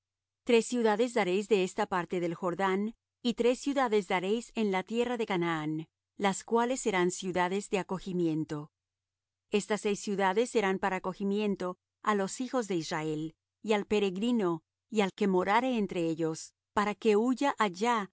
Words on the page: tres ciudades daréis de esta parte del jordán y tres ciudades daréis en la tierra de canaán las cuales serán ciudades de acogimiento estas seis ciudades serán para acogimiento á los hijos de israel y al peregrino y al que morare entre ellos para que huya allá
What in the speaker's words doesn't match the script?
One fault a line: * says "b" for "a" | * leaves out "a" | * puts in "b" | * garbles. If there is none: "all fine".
all fine